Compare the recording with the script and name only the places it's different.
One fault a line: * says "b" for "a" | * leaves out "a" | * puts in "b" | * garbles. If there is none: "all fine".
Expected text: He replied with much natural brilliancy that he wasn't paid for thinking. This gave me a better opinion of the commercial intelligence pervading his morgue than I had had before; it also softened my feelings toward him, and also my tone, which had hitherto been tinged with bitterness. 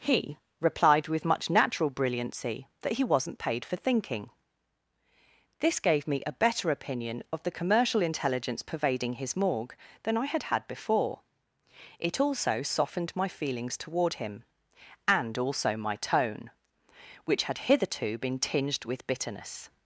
all fine